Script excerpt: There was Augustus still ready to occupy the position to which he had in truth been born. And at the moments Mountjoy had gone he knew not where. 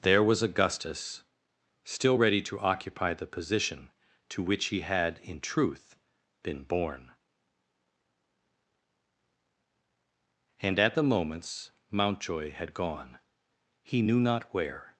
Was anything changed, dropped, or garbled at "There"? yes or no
no